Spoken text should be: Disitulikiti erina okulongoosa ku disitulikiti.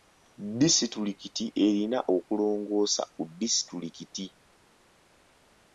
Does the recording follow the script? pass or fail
pass